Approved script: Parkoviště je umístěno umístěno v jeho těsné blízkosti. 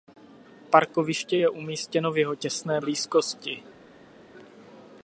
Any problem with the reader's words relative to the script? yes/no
yes